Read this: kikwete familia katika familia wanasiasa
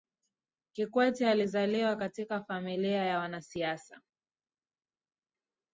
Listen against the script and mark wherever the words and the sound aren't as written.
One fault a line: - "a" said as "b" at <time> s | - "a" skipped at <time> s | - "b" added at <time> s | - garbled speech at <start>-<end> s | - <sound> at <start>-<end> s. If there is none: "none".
- "familia" said as "alizaliwa" at 1.3 s
- "ya" added at 3.0 s